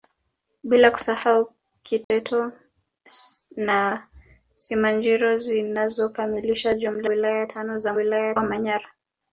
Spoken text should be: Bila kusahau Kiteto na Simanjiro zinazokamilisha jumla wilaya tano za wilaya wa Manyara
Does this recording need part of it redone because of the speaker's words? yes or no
no